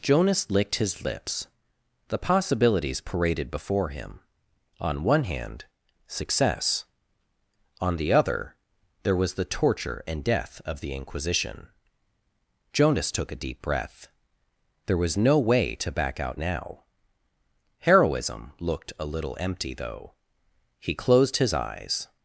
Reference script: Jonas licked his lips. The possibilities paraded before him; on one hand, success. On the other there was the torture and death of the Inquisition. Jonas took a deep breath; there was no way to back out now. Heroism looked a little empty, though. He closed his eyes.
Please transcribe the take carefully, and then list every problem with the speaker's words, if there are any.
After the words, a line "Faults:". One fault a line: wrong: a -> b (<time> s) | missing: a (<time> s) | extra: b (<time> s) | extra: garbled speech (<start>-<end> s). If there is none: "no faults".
Jonas licked his lips. The possibilities paraded before him; on one hand, success. On the other there was the torture and death of the Inquisition. Jonas took a deep breath; there was no way to back out now. Heroism looked a little empty, though. He closed his eyes.
Faults:
no faults